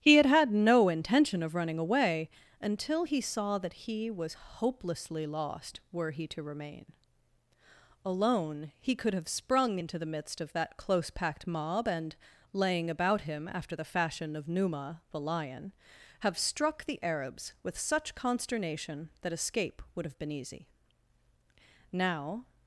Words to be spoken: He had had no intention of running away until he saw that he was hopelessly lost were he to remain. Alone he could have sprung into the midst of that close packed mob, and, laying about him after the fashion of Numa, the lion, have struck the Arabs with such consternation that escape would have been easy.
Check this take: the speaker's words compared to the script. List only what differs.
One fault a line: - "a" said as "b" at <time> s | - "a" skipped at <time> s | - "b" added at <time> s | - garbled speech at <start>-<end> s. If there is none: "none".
- "Now" added at 21.9 s